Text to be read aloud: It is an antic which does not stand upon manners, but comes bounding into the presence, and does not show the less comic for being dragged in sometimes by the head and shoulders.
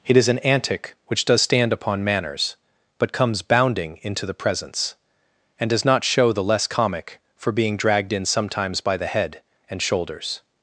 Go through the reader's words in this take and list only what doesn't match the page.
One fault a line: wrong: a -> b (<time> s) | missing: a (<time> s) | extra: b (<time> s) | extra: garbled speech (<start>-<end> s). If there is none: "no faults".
missing: not (1.4 s)